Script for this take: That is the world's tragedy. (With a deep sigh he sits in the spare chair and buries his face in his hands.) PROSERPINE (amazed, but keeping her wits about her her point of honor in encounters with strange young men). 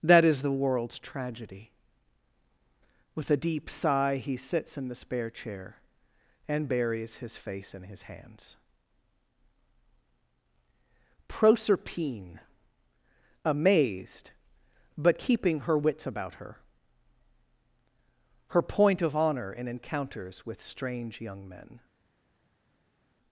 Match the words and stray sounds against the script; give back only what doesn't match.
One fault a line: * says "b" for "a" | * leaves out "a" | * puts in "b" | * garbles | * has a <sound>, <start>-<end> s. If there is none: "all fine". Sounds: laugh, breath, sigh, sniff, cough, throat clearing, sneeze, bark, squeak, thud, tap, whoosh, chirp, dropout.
all fine